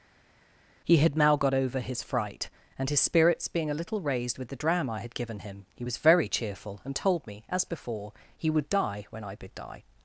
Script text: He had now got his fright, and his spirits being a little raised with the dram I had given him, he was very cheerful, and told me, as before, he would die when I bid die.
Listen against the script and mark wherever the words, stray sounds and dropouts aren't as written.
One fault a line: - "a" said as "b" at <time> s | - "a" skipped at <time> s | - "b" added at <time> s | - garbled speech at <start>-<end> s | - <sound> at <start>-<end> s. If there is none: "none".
- "over" added at 1.5 s